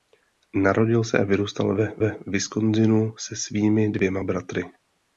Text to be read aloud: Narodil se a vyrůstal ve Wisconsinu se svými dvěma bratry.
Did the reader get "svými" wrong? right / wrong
right